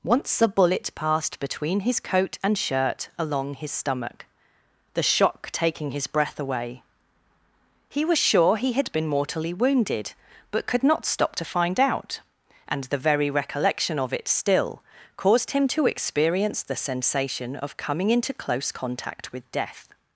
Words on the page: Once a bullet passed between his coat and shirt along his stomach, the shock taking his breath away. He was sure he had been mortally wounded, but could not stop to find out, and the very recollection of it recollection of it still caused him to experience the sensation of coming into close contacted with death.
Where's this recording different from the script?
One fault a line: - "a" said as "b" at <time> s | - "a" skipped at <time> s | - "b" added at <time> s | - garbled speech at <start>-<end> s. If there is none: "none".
- "recollection of it" skipped at 14.3 s
- "contacted" said as "contact" at 18.7 s